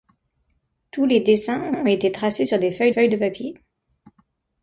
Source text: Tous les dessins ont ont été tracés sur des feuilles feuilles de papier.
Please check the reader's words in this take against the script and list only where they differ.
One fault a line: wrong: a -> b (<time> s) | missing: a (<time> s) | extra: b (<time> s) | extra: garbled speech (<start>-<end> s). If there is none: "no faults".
no faults